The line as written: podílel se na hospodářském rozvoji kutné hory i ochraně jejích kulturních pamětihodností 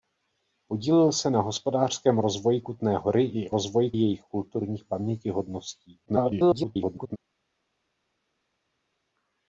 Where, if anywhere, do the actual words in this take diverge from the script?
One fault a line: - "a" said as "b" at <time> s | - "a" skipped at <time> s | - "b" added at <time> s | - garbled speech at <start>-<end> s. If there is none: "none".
- "ochraně" said as "rozvoji" at 3.5 s
- garbled speech at 6.1-7.2 s